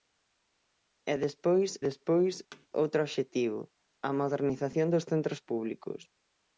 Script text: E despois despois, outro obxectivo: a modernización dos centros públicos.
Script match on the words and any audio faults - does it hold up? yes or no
no